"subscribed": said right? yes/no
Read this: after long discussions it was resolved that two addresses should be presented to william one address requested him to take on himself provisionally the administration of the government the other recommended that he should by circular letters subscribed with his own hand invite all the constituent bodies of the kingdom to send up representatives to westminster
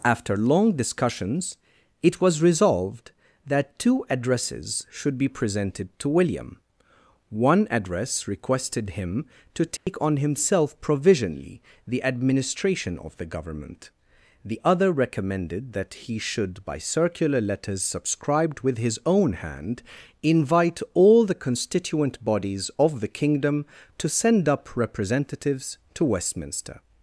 yes